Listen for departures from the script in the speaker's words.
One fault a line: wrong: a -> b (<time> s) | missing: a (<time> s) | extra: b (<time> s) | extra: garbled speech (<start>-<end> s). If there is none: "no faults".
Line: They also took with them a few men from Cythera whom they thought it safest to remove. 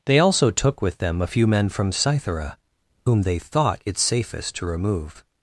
no faults